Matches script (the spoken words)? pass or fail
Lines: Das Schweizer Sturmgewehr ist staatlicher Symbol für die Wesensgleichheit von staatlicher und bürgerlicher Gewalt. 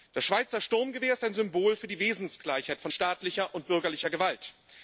fail